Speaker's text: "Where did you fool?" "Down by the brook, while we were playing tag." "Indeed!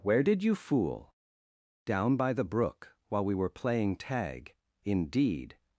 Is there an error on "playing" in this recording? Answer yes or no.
no